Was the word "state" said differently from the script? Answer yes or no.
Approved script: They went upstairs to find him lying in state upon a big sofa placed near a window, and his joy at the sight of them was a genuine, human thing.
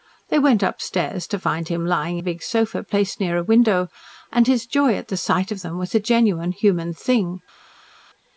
yes